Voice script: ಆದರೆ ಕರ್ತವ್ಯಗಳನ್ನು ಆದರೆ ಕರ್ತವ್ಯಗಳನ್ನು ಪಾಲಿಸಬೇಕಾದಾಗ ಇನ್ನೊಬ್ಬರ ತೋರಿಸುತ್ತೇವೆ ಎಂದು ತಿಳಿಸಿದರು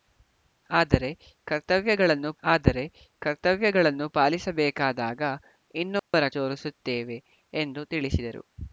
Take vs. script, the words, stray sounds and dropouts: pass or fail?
fail